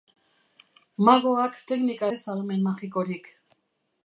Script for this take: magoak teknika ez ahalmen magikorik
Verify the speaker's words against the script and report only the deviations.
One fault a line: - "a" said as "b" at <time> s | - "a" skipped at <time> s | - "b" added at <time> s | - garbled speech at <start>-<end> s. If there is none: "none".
none